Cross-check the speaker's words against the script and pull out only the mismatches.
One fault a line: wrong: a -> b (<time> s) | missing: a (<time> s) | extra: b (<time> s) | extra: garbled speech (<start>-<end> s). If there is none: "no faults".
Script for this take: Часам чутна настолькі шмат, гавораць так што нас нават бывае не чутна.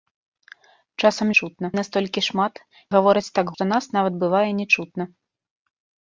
no faults